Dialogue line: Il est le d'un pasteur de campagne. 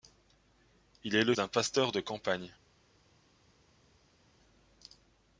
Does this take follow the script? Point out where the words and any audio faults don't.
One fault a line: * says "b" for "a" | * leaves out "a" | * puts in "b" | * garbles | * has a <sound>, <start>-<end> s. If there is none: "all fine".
all fine